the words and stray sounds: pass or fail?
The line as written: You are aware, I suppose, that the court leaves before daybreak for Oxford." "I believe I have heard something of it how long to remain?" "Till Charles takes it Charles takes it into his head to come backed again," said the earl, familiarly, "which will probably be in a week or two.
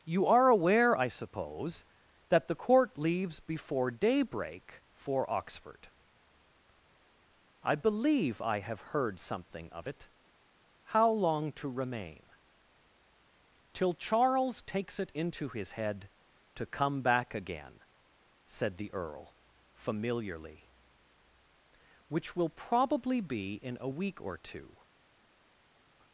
fail